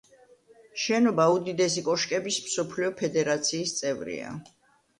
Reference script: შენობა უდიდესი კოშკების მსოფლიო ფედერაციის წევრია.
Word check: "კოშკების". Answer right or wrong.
right